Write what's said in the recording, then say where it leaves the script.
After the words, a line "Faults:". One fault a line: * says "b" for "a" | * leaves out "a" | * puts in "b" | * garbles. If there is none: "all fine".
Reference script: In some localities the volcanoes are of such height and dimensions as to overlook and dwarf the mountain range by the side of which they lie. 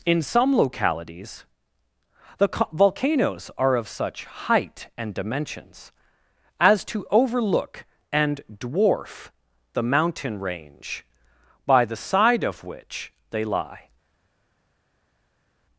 In some localities the volcanoes are of such height and dimensions as to overlook and dwarf the mountain range by the side of which they lie.
Faults:
all fine